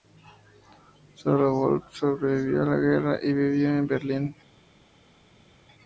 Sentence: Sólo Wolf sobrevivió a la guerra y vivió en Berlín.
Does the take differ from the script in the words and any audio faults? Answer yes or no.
no